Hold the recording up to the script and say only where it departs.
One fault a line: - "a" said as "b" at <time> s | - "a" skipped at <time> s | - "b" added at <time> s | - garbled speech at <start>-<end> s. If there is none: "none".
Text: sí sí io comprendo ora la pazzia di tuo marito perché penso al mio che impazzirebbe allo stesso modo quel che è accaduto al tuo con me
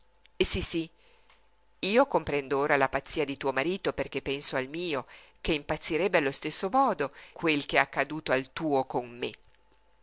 none